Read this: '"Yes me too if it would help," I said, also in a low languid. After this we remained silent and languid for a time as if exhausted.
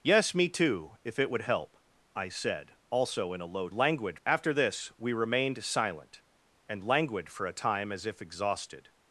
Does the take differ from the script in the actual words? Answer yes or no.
no